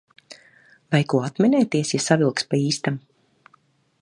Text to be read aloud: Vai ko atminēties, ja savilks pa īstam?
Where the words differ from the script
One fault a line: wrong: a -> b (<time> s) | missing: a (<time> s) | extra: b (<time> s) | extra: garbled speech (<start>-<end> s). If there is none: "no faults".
no faults